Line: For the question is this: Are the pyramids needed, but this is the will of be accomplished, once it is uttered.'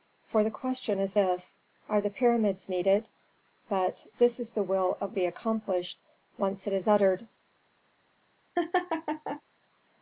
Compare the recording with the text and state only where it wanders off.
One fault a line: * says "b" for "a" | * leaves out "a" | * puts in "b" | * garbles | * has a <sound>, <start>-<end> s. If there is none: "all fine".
* has a laugh, 8.6-9.4 s